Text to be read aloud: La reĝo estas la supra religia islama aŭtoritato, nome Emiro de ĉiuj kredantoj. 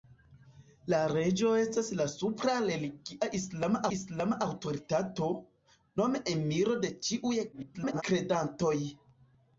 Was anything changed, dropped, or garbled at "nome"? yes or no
no